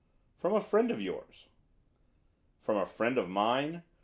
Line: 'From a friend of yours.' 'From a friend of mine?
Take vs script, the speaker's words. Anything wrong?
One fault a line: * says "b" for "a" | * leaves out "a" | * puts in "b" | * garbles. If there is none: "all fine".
all fine